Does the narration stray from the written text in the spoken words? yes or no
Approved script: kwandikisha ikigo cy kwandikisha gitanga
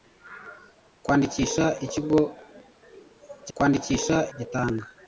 no